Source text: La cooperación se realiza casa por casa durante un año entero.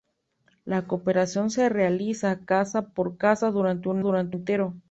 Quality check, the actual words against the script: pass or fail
fail